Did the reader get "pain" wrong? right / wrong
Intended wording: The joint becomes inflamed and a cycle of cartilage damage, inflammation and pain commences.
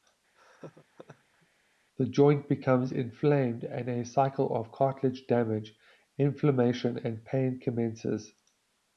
right